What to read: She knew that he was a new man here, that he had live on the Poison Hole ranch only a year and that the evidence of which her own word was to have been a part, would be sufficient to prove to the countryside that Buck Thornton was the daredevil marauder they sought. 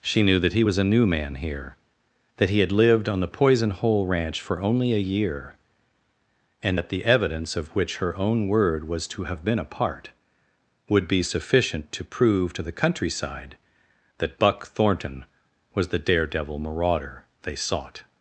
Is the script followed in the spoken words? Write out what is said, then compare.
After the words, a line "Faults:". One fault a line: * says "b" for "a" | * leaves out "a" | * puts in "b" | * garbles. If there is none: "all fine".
She knew that he was a new man here, that he had lived on the Poison Hole ranch for only a year and that the evidence of which her own word was to have been a part, would be sufficient to prove to the countryside that Buck Thornton was the daredevil marauder they sought.
Faults:
* says "lived" for "live"
* puts in "for"